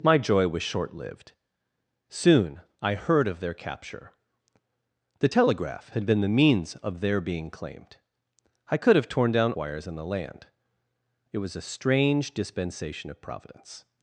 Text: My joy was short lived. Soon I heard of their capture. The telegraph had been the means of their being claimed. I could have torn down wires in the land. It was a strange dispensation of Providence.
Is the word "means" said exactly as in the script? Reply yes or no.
yes